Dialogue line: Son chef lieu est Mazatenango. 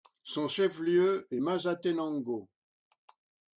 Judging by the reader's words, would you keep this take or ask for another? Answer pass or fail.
pass